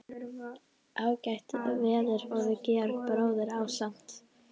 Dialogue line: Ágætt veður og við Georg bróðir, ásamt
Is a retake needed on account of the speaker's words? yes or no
no